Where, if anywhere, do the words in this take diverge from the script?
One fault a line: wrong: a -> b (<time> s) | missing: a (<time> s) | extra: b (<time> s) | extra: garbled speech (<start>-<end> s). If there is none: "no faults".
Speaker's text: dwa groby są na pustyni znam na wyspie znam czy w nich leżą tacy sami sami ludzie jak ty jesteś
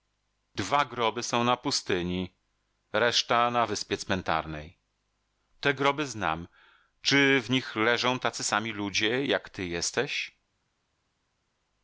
wrong: znam -> reszta (2.9 s)
extra: cmentarnej te groby (4.0 s)
missing: sami (8.7 s)